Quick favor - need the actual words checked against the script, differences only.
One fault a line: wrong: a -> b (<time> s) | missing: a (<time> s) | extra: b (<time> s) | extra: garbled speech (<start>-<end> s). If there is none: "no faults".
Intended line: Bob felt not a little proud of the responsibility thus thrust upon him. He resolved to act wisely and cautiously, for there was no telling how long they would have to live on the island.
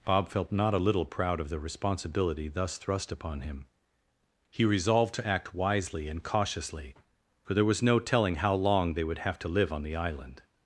no faults